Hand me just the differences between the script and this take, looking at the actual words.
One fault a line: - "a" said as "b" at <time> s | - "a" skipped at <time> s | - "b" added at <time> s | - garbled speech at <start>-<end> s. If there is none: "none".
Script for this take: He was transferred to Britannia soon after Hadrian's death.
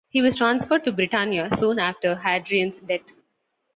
none